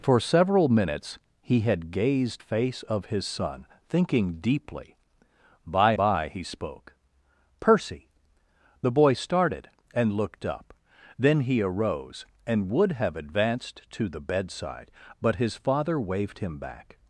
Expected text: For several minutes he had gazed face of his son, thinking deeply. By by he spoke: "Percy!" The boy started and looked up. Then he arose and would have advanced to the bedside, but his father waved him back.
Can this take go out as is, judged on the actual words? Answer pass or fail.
pass